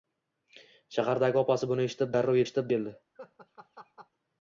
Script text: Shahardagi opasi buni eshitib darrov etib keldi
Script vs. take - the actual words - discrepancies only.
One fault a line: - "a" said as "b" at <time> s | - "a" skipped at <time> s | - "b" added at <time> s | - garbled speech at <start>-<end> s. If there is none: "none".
- "etib" said as "eshitib" at 2.5 s